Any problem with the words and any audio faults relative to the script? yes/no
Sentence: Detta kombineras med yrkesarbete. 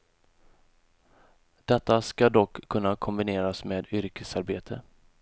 yes